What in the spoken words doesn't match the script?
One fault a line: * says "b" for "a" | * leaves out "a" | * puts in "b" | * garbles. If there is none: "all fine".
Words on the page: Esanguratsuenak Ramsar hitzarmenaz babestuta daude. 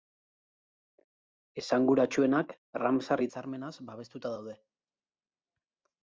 all fine